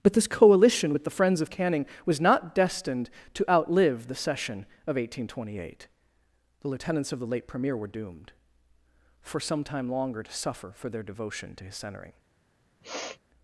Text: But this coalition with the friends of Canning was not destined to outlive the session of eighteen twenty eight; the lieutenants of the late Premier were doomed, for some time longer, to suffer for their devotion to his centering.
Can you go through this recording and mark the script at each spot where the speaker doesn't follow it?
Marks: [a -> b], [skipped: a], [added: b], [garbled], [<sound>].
But this coalition with the friends of Canning was not destined to outlive the session of eighteen twenty eight; the lieutenants of the late Premier were doomed, for some time longer, to suffer for their devotion to his centering. [sniff]